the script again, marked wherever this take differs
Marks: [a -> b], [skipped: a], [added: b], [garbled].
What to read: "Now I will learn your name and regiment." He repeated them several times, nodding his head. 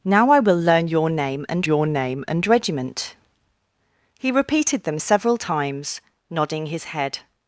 "Now I will learn your name and [added: your name and] regiment." He repeated them several times, nodding his head.